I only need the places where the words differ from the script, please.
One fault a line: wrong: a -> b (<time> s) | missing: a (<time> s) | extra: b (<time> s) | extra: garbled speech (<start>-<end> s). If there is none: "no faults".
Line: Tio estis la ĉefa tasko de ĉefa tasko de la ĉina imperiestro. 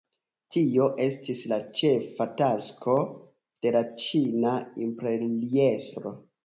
missing: ĉefa tasko de (3.8 s)